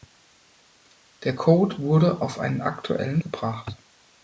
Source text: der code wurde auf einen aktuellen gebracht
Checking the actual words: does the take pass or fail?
pass